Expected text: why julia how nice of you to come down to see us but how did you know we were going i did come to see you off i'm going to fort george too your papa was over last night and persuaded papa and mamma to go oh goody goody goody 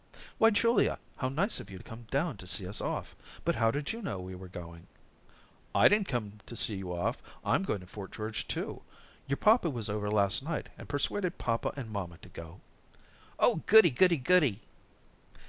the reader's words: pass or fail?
fail